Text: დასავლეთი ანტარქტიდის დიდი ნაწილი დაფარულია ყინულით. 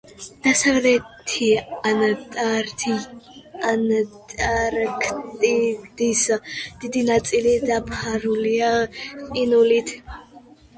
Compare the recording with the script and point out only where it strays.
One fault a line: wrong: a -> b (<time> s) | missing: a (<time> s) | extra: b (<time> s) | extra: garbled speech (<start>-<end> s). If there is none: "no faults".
no faults